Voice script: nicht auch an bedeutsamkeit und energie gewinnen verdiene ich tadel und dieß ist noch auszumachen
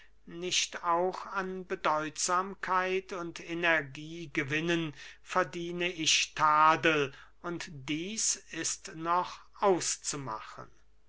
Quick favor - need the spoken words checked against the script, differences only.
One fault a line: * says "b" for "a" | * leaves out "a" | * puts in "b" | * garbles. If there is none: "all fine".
all fine